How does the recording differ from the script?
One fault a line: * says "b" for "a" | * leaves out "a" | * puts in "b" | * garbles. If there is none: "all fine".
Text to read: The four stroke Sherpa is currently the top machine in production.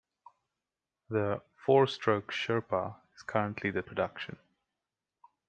* leaves out "top machine in"